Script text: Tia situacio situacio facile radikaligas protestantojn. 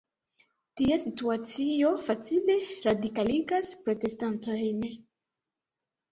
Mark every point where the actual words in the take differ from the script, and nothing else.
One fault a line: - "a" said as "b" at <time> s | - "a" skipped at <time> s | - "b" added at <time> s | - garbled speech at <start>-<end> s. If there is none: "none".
- "situacio" skipped at 1.9 s